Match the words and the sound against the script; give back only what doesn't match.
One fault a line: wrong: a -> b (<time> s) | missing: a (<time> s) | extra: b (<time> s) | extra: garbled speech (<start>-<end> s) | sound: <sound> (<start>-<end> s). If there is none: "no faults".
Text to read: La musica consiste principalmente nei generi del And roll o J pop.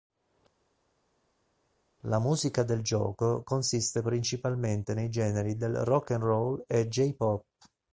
extra: del gioco (2.6 s)
extra: Rock (5.8 s)
wrong: o -> e (6.6 s)